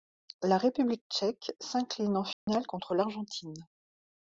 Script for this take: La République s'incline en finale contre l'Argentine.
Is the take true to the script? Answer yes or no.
no